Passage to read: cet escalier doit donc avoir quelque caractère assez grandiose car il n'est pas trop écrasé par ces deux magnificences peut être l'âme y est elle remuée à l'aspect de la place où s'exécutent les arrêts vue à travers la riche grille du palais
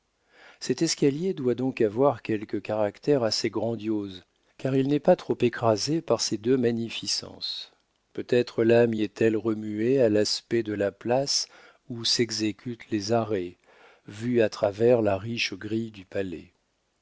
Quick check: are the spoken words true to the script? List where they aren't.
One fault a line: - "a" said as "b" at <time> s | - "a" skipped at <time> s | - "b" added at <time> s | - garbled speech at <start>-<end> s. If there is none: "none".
none